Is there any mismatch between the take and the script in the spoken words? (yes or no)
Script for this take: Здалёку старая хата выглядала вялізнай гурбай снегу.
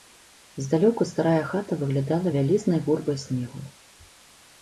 no